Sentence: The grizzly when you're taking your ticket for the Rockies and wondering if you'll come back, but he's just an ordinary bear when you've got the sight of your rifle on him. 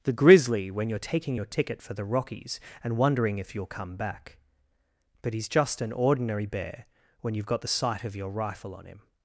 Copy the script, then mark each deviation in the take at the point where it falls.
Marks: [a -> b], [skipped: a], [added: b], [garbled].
The grizzly when you're taking your ticket for the Rockies and wondering if you'll come back, but he's just an ordinary bear when you've got the sight of your rifle on him.